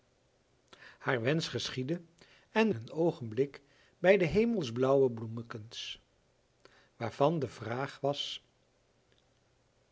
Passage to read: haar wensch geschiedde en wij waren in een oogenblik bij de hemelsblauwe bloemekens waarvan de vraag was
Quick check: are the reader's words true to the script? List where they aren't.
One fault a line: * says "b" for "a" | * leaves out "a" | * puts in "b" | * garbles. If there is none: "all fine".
* leaves out "wij waren in"